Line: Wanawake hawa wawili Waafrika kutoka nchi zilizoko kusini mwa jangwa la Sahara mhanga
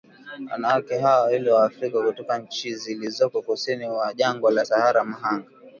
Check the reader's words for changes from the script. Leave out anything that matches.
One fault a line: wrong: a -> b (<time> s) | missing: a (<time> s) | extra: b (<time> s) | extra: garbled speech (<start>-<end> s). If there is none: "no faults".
no faults